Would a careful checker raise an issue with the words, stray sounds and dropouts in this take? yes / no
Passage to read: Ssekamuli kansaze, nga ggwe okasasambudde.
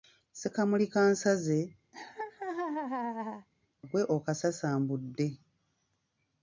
yes